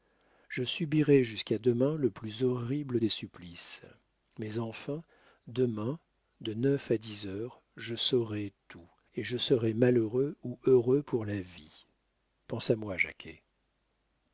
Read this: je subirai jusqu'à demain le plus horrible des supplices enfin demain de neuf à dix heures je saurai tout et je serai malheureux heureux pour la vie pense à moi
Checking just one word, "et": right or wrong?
right